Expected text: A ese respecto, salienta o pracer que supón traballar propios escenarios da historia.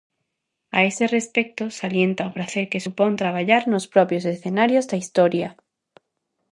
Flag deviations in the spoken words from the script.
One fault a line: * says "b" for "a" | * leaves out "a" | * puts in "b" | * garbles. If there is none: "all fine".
* puts in "nos"